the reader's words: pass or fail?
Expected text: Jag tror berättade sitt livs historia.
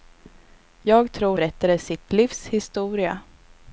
pass